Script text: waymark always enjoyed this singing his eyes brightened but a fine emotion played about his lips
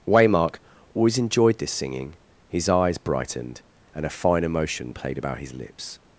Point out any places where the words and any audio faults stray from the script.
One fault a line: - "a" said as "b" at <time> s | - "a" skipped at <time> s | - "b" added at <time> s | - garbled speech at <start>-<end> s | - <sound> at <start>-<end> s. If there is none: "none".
- "but" said as "and" at 3.9 s